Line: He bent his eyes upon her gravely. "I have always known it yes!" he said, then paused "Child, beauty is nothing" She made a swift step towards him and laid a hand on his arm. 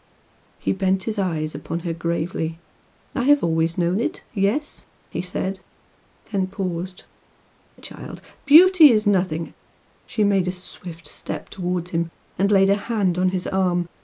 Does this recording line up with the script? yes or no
yes